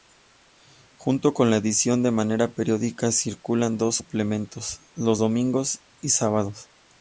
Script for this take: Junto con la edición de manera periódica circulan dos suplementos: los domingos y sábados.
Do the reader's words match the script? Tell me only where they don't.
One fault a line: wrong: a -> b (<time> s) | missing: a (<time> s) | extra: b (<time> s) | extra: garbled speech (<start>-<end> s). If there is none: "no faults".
no faults